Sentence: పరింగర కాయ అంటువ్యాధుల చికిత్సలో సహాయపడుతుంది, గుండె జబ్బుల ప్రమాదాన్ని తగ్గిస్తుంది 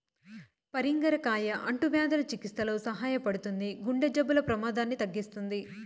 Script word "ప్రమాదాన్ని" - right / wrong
right